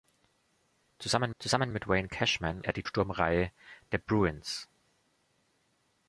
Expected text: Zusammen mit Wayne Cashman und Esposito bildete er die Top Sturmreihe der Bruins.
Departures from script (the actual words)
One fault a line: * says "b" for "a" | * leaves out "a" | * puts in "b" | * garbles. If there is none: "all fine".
* puts in "zusammen"
* leaves out "und Esposito bildete"
* leaves out "Top"